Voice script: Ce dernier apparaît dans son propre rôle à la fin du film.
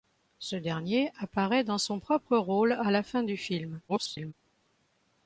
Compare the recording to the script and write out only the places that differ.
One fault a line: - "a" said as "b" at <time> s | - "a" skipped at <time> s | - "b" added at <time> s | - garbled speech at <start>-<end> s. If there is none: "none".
- garbled speech at 3.9-4.3 s